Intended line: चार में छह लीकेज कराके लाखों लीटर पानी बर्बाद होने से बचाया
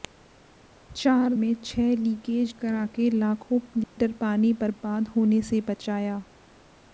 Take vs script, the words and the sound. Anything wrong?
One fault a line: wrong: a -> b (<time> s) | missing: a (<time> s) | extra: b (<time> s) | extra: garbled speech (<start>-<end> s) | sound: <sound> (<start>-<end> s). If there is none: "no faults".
sound: dropout (3.8-4.0 s)